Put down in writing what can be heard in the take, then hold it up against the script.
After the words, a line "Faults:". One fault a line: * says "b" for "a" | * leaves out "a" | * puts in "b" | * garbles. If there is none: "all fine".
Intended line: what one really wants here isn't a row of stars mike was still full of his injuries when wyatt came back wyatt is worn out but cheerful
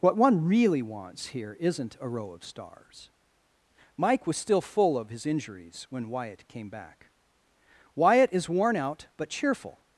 what one really wants here isn't a row of stars mike was still full of his injuries when wyatt came back wyatt is worn out but cheerful
Faults:
all fine